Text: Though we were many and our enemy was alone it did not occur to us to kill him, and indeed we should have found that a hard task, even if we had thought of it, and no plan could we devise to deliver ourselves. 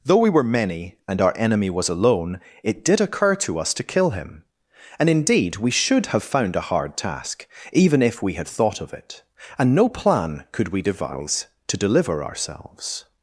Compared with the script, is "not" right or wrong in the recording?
wrong